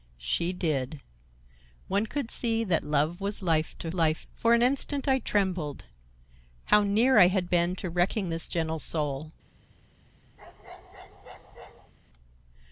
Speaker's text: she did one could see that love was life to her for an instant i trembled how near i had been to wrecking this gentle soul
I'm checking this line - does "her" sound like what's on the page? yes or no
no